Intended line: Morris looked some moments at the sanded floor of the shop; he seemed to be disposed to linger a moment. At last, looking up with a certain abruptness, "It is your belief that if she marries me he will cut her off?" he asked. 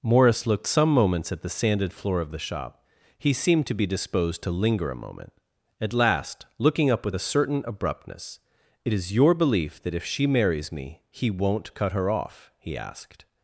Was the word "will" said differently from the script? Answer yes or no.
yes